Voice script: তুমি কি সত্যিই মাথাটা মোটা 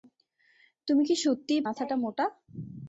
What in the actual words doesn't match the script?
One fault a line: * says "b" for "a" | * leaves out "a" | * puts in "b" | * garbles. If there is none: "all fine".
all fine